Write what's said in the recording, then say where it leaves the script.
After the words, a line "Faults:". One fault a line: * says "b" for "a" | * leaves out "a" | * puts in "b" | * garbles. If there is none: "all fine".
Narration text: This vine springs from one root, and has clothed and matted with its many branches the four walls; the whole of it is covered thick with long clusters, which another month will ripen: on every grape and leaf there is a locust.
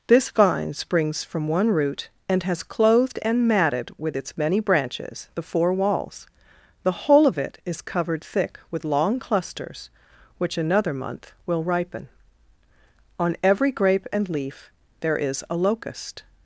This vine springs from one root, and has clothed and matted with its many branches the four walls; the whole of it is covered thick with long clusters, which another month will ripen: on every grape and leaf there is a locust.
Faults:
all fine